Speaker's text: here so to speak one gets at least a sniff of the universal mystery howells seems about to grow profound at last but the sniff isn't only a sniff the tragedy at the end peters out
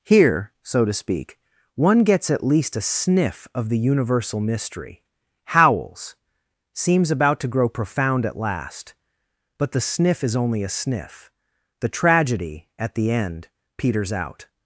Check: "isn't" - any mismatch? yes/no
yes